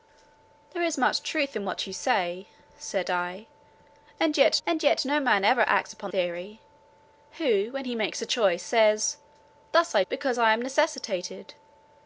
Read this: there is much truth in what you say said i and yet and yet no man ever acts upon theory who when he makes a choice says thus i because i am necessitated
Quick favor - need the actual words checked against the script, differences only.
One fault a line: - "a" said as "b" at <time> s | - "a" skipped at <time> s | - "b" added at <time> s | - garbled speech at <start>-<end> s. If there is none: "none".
none